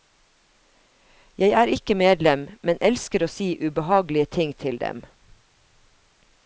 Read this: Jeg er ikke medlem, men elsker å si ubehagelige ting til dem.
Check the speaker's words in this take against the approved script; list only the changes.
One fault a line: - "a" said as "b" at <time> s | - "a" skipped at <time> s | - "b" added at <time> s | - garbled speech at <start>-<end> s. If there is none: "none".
none